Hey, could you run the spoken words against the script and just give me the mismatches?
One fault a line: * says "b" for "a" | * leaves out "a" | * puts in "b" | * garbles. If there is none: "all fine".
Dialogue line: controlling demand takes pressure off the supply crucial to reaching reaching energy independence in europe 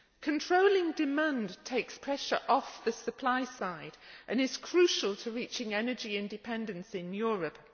* puts in "side and is"
* leaves out "reaching"